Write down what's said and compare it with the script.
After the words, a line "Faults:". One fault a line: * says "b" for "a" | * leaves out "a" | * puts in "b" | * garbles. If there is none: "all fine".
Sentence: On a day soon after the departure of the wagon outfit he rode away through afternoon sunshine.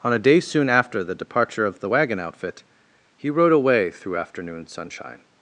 On a day soon after the departure of the wagon outfit he rode away through afternoon sunshine.
Faults:
all fine